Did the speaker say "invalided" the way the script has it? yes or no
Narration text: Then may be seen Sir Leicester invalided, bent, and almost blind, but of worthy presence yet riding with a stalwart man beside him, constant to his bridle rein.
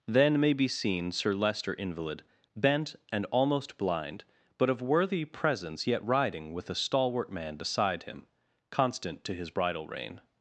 no